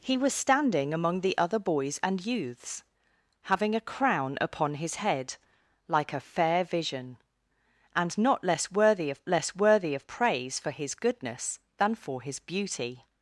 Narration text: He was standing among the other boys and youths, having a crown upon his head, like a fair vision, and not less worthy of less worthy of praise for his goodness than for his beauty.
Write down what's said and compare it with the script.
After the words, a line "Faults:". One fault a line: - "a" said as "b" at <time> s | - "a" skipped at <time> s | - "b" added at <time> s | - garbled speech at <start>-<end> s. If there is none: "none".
He was standing among the other boys and youths, having a crown upon his head, like a fair vision, and not less worthy of less worthy of praise for his goodness than for his beauty.
Faults:
none